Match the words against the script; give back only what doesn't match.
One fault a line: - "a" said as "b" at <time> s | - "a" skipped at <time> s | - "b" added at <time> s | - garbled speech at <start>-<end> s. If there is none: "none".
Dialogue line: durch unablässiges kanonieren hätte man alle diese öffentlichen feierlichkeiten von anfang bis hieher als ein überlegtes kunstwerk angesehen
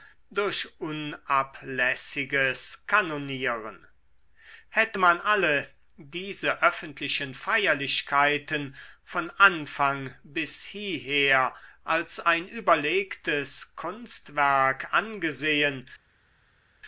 none